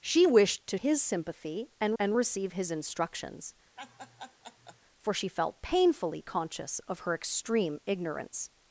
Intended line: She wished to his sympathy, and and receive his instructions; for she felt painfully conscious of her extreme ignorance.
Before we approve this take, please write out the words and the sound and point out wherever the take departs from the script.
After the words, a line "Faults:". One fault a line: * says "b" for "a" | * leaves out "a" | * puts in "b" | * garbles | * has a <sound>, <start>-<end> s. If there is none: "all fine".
She wished to his sympathy, and and receive his instructions; for she felt painfully conscious of her extreme ignorance.
Faults:
* has a laugh, 3.8-4.8 s